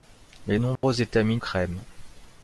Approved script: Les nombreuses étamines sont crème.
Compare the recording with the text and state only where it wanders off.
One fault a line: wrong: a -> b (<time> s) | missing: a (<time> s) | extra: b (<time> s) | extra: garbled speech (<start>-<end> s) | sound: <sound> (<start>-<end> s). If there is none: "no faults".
sound: dropout (0.8-0.8 s)
missing: sont (1.4 s)